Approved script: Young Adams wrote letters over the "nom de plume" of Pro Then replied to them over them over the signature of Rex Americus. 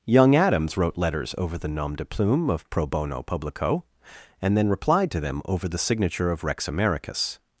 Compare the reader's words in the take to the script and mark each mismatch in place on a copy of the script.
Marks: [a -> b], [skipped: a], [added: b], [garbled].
Young Adams wrote letters over the "nom de plume" of Pro [added: Bono Publico and] Then replied to them over [skipped: them over] the signature of Rex Americus.